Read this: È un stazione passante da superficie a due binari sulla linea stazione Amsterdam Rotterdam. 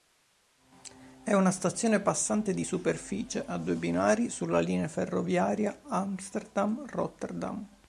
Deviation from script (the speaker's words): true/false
true